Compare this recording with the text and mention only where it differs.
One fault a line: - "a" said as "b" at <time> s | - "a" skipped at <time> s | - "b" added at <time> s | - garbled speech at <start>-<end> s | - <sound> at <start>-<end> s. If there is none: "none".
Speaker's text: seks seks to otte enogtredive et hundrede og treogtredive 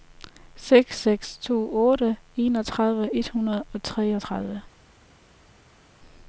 none